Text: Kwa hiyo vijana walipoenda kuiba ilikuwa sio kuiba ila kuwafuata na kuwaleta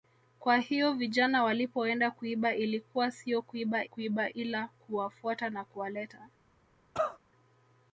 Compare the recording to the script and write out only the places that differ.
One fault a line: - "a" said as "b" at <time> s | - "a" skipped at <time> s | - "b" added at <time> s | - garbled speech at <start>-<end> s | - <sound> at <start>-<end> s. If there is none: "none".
- "kuiba" added at 3.8 s
- cough at 6.9-7.2 s